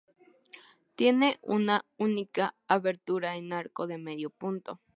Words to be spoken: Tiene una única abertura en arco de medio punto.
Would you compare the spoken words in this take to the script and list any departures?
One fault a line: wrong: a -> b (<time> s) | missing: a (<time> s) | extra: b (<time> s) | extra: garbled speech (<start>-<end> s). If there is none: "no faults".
no faults